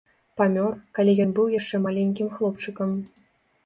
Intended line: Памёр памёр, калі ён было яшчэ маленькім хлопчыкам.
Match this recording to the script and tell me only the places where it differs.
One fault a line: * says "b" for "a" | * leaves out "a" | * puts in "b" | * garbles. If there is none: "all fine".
* leaves out "памёр"
* says "быў" for "было"